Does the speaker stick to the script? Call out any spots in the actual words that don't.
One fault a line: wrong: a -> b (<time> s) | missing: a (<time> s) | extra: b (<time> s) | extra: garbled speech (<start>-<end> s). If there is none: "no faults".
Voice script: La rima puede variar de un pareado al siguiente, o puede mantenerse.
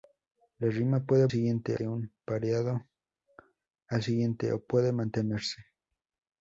wrong: variar -> siguiente (1.3 s)